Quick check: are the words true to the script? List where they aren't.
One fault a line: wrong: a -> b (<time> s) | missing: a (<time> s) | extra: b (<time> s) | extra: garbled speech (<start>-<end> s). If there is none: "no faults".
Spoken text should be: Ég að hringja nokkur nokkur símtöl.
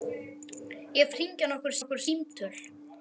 no faults